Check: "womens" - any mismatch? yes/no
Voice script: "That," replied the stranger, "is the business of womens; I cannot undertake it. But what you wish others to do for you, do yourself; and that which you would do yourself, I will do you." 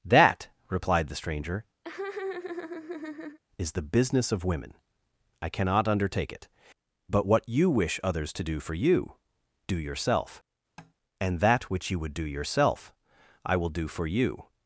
yes